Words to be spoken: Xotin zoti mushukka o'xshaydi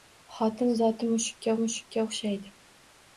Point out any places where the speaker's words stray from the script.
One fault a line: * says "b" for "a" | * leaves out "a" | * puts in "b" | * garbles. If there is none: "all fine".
* puts in "mushukka"